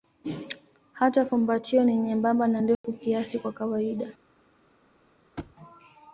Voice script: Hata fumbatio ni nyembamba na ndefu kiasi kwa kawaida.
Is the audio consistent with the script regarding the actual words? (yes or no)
yes